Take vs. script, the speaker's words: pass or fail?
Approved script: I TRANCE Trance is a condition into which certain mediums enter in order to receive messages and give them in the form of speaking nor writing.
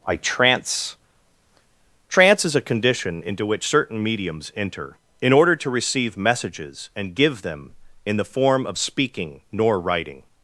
pass